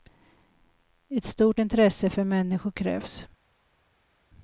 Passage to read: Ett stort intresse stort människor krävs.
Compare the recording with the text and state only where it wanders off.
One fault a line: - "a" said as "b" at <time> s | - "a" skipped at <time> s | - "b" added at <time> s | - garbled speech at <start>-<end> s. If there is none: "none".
- "stort" said as "för" at 2.1 s